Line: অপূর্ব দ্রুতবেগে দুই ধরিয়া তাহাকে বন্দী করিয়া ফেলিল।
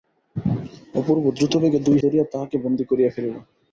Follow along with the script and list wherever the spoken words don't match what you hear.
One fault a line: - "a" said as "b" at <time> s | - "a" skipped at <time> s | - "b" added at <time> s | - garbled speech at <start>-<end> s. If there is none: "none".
none